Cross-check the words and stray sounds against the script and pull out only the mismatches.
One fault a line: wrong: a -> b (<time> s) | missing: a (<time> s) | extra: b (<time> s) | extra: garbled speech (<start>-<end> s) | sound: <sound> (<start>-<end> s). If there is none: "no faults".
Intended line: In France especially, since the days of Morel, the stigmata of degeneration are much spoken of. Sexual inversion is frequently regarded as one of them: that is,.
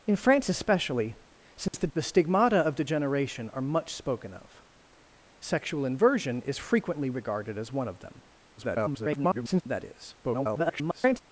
sound: dropout (1.7-1.7 s)
missing: days of Morel (1.9 s)
extra: garbled speech (8.6-9.6 s)
extra: garbled speech (10.2-11.2 s)